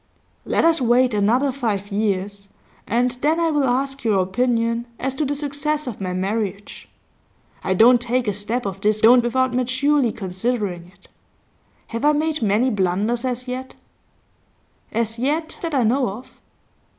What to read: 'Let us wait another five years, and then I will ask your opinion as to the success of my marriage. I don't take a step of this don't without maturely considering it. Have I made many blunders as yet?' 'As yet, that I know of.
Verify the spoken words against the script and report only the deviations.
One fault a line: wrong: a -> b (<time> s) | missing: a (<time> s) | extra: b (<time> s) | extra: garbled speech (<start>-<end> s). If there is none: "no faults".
no faults